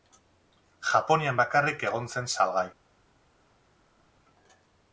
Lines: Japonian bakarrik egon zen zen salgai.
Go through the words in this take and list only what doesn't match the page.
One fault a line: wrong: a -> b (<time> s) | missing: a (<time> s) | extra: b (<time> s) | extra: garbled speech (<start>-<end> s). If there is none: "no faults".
missing: zen (2.3 s)